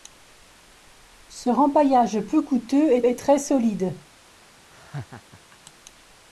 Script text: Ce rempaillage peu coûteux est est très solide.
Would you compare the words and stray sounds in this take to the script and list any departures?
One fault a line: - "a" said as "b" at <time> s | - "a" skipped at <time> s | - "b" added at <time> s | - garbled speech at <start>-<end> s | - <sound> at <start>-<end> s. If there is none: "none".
- laugh at 4.7-5.6 s